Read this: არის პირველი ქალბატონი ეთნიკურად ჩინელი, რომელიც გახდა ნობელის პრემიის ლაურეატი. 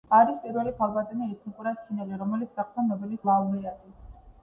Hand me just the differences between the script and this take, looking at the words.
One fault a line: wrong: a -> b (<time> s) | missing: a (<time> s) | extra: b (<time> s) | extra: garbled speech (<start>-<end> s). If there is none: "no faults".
missing: პრემიის (3.2 s)